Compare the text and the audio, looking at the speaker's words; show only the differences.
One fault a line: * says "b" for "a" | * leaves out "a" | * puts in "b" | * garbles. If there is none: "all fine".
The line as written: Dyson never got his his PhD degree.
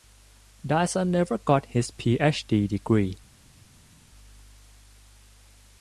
* leaves out "his"